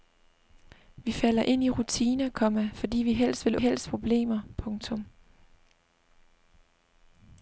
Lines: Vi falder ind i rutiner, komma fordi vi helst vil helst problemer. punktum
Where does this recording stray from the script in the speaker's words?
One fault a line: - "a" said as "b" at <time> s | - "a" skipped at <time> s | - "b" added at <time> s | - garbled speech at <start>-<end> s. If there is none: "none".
none